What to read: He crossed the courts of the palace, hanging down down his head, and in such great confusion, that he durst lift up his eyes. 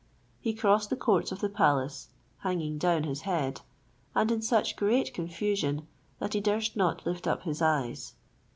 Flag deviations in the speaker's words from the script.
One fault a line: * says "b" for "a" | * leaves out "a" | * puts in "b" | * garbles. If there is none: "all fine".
* leaves out "down"
* puts in "not"